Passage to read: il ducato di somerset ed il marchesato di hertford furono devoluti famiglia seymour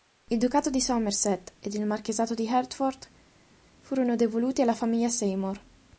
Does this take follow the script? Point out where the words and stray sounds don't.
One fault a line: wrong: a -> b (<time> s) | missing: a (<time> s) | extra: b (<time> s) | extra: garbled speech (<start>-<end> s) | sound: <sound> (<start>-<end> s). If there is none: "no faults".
extra: alla (4.6 s)